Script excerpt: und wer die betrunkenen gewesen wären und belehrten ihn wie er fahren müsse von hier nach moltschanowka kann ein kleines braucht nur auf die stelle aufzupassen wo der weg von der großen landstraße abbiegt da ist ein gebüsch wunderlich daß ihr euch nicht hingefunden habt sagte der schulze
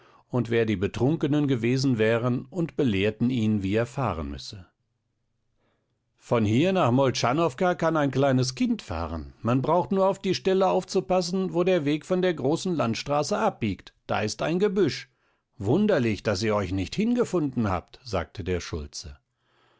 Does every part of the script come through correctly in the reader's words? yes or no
no